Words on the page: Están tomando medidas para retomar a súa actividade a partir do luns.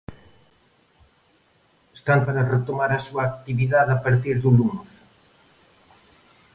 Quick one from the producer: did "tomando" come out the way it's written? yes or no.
no